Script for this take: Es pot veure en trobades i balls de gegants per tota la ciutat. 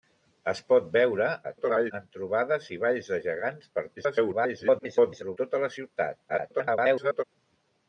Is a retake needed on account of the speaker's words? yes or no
yes